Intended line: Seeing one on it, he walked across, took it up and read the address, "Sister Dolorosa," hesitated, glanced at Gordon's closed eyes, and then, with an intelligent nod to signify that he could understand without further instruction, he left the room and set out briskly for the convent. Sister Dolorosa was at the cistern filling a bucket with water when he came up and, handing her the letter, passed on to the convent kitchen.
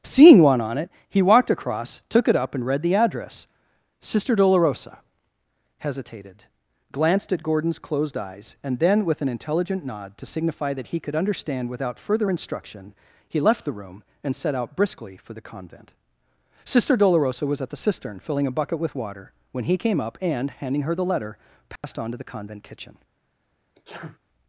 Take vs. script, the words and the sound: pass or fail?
fail